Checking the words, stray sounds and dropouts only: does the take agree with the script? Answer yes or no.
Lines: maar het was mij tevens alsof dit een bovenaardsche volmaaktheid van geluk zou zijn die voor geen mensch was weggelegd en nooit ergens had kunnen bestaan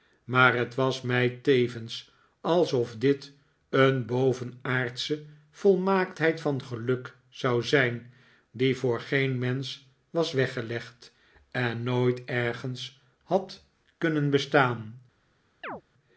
no